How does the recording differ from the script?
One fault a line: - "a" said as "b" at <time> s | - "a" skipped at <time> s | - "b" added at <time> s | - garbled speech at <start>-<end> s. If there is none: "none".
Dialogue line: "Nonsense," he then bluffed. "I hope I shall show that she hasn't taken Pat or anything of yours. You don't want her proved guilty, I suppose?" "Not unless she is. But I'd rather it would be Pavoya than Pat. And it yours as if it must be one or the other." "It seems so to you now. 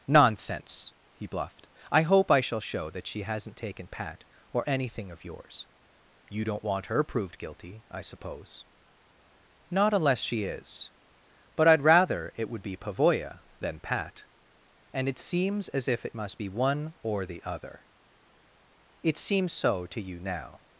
- "then" skipped at 1.3 s
- "yours" said as "seems" at 15.2 s